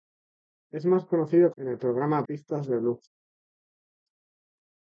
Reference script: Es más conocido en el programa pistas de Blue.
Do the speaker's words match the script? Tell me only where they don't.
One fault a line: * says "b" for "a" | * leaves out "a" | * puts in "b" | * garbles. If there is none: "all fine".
all fine